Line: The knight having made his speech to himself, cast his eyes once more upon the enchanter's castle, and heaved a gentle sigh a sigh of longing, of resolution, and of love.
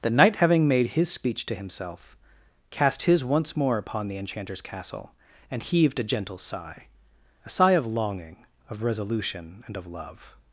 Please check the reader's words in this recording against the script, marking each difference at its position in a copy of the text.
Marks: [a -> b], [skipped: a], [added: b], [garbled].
The knight having made his speech to himself, cast his [skipped: eyes] once more upon the enchanter's castle, and heaved a gentle sigh a sigh of longing, of resolution, and of love.